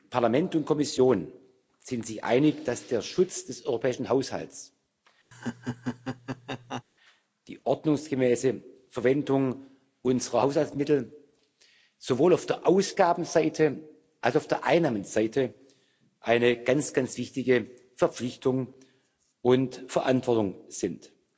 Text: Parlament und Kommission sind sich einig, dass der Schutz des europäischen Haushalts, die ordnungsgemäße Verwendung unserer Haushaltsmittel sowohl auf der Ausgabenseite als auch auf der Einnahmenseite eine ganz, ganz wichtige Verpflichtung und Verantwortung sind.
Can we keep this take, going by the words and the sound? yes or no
no